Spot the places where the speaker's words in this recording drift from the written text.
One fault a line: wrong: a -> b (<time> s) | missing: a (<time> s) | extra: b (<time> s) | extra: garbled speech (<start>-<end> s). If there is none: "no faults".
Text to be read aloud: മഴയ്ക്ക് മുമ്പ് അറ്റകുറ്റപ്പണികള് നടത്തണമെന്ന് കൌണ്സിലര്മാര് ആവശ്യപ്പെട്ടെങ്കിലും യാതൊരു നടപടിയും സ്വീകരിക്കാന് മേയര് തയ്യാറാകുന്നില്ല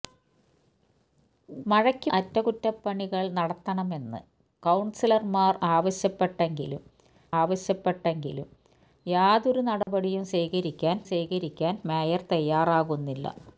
missing: മുമ്പ് (2.1 s)
extra: ആവശ്യപ്പെട്ടെങ്കിലും (7.4 s)
extra: സ്വീകരിക്കാന് (11.0 s)